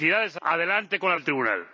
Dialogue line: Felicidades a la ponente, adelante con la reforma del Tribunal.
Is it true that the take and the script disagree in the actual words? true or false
true